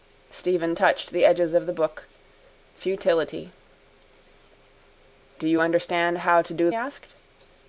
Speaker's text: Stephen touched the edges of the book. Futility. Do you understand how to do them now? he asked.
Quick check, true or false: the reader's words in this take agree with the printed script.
false